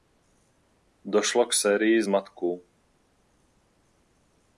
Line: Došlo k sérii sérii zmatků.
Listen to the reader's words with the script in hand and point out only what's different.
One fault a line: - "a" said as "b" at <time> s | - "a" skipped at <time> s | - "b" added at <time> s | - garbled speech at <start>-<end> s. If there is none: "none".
- "sérii" skipped at 2.0 s